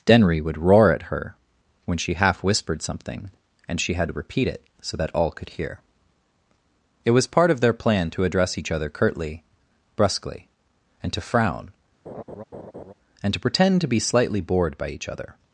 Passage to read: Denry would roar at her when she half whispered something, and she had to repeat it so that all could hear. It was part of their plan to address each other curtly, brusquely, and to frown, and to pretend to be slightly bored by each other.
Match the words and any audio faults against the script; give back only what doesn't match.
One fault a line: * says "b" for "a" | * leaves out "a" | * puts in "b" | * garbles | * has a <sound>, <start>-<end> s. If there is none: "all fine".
* has a laugh, 12.1-12.9 s